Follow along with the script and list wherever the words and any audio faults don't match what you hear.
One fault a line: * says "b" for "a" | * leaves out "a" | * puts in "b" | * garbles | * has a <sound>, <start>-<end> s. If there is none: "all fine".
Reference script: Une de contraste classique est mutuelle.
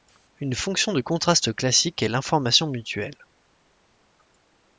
* puts in "fonction"
* puts in "l'information"